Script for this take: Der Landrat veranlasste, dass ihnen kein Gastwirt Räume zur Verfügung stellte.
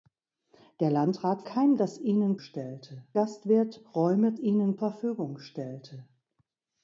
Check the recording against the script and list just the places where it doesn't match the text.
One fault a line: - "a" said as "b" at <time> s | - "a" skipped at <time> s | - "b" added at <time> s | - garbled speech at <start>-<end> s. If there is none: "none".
- "veranlasste" said as "kein" at 1.4 s
- "kein" said as "stellte" at 2.4 s
- "zur" said as "ihnen" at 4.4 s